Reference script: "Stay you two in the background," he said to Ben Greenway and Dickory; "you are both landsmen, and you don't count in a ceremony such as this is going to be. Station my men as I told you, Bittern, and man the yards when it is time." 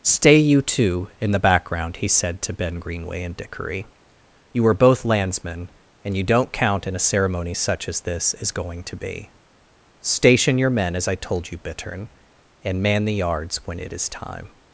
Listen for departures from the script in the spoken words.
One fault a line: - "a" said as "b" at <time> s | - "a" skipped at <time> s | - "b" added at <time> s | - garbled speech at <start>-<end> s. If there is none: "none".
- "my" said as "your" at 10.6 s